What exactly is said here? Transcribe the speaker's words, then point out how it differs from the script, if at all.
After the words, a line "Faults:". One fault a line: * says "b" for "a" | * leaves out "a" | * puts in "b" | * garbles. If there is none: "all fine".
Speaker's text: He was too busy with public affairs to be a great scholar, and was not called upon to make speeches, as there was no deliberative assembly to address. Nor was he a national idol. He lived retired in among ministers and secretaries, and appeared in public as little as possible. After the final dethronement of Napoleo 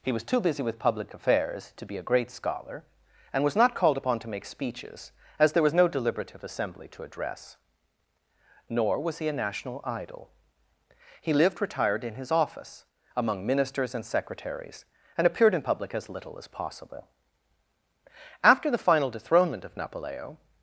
He was too busy with public affairs to be a great scholar, and was not called upon to make speeches, as there was no deliberative assembly to address. Nor was he a national idol. He lived retired in his office, among ministers and secretaries, and appeared in public as little as possible. After the final dethronement of Napoleo
Faults:
* puts in "his office"